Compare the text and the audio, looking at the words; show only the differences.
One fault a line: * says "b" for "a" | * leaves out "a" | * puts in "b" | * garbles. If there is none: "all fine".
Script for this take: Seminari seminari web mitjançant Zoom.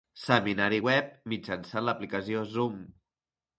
* leaves out "seminari"
* puts in "l'aplicació"